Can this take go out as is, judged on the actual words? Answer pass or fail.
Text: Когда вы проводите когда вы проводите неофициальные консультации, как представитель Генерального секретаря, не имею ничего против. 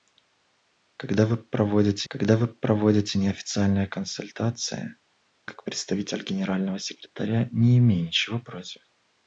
pass